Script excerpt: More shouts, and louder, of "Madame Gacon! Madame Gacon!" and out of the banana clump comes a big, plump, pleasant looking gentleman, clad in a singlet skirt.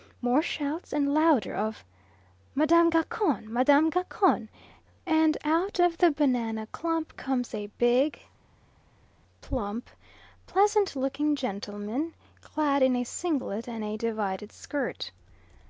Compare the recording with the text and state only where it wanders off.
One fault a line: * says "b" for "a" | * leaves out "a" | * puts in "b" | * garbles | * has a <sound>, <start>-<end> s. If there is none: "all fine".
* puts in "and a divided"